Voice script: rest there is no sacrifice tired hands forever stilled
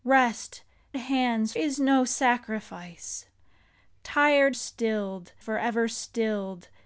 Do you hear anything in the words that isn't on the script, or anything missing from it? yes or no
yes